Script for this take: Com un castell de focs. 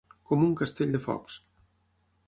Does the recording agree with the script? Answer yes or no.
yes